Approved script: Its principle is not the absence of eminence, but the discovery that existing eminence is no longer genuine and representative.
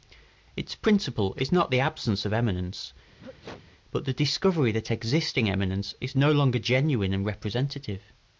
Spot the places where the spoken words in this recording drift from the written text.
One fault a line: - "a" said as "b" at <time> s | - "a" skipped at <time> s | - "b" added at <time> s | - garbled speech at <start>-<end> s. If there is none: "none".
none